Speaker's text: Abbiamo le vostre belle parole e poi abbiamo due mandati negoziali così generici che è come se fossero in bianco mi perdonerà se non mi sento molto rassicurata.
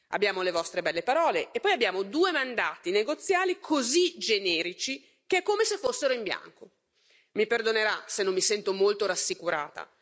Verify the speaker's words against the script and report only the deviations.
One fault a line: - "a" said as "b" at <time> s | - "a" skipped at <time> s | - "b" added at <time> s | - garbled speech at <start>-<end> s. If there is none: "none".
none